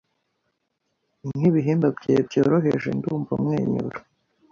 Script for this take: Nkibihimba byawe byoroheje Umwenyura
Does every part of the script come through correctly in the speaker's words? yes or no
no